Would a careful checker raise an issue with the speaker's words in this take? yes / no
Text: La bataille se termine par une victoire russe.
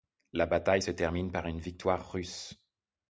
no